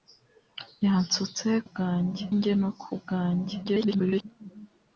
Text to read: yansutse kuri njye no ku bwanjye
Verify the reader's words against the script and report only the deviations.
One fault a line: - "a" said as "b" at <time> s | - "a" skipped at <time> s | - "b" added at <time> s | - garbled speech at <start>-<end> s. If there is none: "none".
- "kuri" said as "bwanjye" at 1.7 s
- garbled speech at 3.6-4.2 s